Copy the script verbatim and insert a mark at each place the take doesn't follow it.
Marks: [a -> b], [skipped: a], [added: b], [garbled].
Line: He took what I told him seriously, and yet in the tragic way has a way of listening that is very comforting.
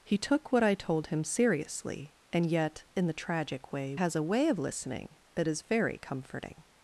He took what I told him seriously, and yet in the tragic way has a way of listening that is very comforting.